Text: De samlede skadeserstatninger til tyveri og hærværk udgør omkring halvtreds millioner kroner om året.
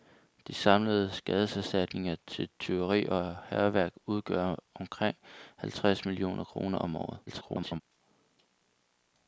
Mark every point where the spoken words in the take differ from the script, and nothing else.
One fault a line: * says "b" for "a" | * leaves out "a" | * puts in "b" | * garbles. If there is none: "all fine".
* garbles